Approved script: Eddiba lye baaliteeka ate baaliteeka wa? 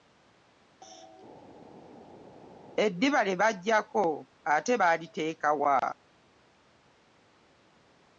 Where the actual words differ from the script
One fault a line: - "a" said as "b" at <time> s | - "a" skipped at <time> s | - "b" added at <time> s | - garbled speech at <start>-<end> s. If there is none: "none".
- "baaliteeka" said as "baggyako" at 3.4 s